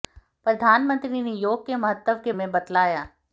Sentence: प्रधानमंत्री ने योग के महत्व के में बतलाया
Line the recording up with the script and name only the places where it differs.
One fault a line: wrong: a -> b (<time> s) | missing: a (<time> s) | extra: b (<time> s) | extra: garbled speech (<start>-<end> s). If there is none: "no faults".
no faults